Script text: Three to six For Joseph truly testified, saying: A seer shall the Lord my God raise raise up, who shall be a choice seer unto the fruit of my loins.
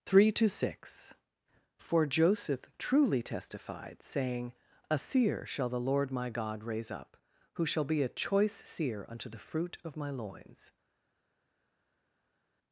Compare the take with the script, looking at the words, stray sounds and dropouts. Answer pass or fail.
fail